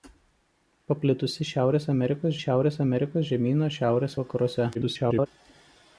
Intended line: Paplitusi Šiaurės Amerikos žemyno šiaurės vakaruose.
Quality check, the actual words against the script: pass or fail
fail